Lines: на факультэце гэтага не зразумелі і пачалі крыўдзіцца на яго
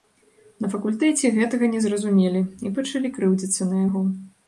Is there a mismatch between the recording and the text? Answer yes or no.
no